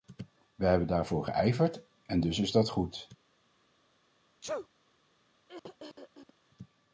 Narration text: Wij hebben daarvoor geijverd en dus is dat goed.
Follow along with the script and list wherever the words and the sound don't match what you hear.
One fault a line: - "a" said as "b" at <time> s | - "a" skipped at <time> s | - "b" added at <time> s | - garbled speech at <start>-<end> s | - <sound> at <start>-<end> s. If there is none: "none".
- sneeze at 4.4-4.7 s
- throat clearing at 5.5-6.3 s